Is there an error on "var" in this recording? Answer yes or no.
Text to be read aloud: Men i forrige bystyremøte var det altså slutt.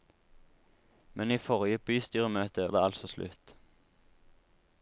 yes